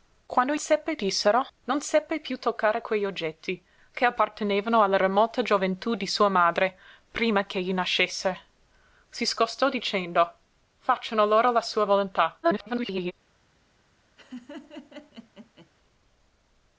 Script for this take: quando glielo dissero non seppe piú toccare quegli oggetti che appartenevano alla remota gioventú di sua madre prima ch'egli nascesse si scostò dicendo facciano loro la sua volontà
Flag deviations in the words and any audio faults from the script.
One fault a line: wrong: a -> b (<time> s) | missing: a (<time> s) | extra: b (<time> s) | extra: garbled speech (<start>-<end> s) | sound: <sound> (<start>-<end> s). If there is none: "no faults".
wrong: glielo -> seppe (0.6 s)
extra: garbled speech (12.4-13.1 s)
sound: laugh (14.2-15.7 s)